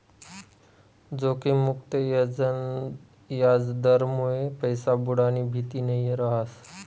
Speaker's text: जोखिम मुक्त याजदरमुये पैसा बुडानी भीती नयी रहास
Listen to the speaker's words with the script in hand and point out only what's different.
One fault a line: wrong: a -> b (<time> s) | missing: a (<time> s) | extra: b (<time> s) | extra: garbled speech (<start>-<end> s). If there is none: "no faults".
no faults